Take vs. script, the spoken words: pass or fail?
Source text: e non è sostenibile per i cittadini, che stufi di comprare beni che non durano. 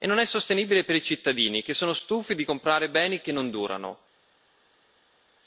fail